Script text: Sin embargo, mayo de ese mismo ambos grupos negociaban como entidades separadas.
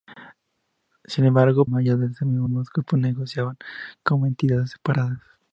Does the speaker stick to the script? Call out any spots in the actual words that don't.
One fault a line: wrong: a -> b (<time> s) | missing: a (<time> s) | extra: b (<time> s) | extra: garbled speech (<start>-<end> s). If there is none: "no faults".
no faults